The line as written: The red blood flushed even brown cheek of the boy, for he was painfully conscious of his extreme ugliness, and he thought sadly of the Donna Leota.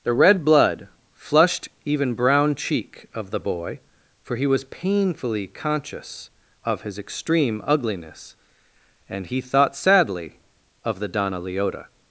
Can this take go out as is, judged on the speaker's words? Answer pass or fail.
pass